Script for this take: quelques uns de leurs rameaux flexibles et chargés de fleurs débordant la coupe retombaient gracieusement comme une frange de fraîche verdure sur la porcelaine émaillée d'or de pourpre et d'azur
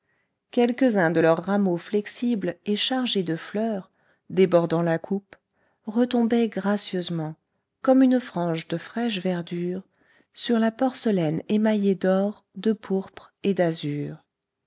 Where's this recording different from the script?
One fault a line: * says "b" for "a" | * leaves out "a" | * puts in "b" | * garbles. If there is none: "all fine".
all fine